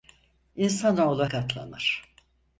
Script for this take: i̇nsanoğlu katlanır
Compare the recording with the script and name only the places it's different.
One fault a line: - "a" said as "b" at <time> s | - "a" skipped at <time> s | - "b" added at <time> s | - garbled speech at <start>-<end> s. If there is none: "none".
none